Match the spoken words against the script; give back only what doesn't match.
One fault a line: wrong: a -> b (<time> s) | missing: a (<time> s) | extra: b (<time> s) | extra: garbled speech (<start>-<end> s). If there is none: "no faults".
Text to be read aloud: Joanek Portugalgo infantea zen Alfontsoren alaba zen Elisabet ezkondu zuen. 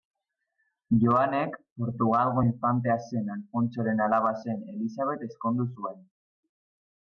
no faults